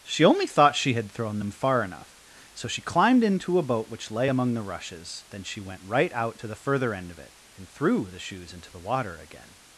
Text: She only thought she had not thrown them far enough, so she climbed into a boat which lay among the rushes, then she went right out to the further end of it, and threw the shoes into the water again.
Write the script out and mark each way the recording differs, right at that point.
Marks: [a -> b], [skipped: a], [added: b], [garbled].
She only thought she had [skipped: not] thrown them far enough, so she climbed into a boat which lay among the rushes, then she went right out to the further end of it, and threw the shoes into the water again.